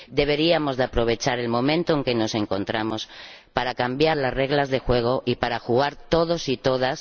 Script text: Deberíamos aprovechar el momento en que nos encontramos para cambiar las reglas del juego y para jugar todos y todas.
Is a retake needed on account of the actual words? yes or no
no